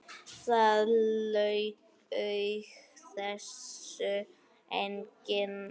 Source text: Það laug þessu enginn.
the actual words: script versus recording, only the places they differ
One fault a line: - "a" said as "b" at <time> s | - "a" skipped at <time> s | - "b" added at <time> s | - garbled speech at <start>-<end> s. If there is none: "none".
none